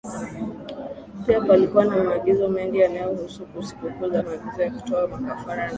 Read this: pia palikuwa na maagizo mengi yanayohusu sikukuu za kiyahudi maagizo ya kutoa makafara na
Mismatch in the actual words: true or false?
true